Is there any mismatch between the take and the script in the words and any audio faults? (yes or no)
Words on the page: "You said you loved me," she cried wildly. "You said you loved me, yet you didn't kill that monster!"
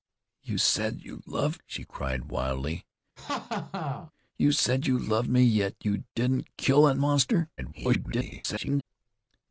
yes